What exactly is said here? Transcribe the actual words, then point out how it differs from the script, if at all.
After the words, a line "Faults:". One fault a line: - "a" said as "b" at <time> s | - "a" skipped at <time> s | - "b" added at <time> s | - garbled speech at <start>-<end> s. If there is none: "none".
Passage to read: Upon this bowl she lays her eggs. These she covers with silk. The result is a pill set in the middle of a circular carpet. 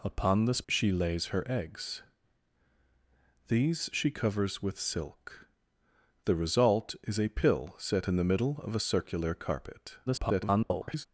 Upon this she lays her eggs. These she covers with silk. The result is a pill set in the middle of a circular carpet. [garbled]
Faults:
- "bowl" skipped at 0.6 s
- garbled speech at 10.1-11.1 s